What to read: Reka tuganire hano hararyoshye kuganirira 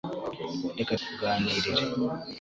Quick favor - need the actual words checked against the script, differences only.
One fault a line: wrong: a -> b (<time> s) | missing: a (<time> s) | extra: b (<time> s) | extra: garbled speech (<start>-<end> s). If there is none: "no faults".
missing: tuganire hano hararyoshye (0.9 s)